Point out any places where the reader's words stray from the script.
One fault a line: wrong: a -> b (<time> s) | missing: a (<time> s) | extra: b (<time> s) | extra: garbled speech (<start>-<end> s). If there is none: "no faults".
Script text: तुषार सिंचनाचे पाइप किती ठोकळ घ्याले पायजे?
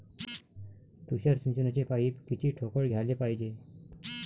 no faults